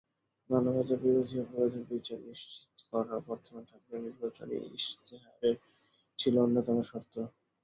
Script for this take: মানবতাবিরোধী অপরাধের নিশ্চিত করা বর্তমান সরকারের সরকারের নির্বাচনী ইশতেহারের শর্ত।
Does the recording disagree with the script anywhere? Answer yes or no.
yes